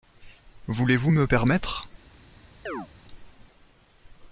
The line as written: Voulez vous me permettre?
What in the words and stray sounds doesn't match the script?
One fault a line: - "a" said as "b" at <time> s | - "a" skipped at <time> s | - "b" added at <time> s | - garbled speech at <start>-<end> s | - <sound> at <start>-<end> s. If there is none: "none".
- chirp at 2.7-2.9 s